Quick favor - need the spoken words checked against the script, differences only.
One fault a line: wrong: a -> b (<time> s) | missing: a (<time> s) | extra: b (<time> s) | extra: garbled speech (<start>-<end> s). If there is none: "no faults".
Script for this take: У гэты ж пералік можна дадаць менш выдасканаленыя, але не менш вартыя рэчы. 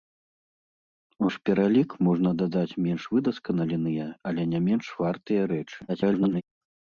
missing: гэты (1.3 s)
extra: garbled speech (5.9-6.4 s)